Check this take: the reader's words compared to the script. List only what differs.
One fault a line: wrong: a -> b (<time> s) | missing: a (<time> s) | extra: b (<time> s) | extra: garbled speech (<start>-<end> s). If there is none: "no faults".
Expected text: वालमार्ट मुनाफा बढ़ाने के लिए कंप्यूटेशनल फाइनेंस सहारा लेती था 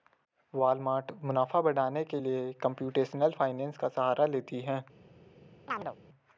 extra: का (3.8 s)
wrong: था -> है (4.6 s)